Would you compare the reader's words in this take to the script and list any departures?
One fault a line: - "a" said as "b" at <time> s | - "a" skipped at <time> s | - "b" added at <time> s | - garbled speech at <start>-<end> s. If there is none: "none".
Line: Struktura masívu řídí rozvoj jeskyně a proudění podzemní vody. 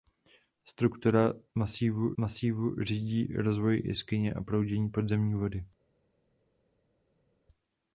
- "masívu" added at 2.2 s